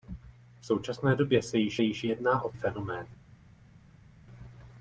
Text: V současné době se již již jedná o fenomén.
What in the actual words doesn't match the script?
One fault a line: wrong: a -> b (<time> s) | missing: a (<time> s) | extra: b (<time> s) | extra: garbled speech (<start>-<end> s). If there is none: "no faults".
no faults